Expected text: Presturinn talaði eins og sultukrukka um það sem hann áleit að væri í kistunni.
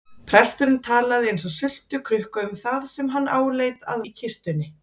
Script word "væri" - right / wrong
wrong